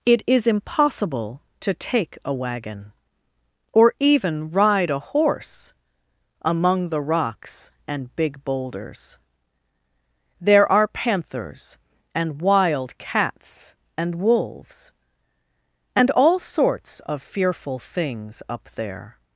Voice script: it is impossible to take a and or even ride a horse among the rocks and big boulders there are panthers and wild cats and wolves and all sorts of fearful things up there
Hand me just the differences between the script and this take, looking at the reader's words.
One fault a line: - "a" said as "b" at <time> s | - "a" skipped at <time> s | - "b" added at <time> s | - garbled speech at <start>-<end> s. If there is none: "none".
- "and" said as "wagon" at 2.3 s